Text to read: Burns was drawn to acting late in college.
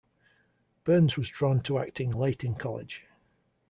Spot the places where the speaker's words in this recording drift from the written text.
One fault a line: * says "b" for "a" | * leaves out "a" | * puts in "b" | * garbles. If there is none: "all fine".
all fine